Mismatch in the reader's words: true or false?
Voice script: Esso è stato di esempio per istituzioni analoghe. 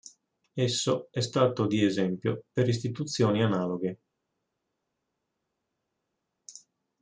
false